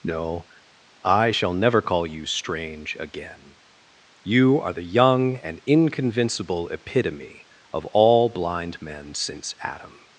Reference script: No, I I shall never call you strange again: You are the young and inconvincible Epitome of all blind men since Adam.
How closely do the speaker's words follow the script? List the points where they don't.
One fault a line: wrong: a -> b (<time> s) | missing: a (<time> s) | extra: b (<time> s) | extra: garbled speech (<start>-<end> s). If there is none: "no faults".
missing: I (1.3 s)